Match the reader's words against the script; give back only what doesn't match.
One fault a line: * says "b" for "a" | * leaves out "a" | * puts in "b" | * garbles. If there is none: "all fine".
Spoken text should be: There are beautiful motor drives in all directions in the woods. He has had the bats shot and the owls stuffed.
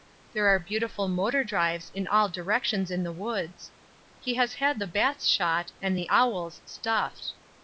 all fine